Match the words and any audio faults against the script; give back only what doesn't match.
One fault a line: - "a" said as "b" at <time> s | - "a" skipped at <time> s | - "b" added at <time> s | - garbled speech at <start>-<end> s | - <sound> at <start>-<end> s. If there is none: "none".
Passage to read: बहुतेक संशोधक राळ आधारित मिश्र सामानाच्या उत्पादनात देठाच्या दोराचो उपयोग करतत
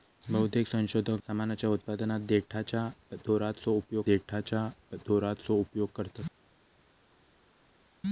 - "राळ आधारित मिश्र सामानाच्या उत्पादनात" said as "सामानाच्या उत्पादनात देठाच्या दोराचो उपयोग" at 1.3 s